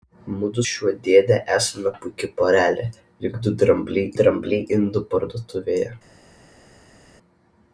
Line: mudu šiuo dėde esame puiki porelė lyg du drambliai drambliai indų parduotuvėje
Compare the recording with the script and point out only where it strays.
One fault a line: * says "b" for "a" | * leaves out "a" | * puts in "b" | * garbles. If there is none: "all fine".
all fine